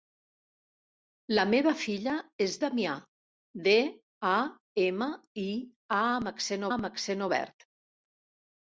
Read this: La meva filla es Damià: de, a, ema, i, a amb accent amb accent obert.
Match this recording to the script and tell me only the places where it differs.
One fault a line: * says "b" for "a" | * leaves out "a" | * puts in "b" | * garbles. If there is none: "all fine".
all fine